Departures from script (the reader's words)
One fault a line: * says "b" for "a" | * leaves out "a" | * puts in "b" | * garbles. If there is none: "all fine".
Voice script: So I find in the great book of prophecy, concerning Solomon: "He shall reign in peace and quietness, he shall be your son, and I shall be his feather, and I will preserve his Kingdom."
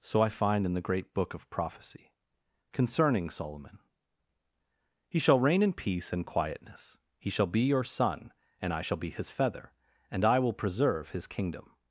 all fine